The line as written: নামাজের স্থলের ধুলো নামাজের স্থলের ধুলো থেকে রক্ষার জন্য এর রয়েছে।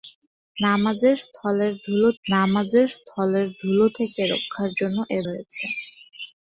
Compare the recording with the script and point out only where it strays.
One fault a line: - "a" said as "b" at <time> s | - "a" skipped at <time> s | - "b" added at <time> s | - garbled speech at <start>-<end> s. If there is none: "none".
none